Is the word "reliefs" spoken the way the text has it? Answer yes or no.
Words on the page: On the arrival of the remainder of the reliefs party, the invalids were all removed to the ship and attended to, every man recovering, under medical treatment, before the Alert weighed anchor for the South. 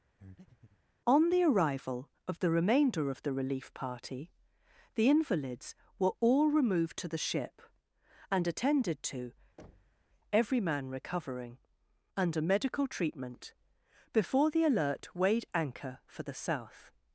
no